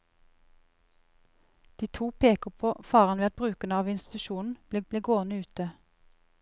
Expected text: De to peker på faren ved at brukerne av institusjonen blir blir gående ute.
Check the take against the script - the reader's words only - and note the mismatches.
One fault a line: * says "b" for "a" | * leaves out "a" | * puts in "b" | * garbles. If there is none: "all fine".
all fine